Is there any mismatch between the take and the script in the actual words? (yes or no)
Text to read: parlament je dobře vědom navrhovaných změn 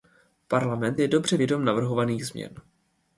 no